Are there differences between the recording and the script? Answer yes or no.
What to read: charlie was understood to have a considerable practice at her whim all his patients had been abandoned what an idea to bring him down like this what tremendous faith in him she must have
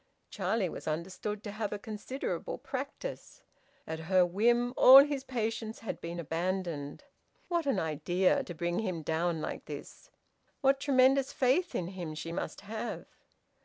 no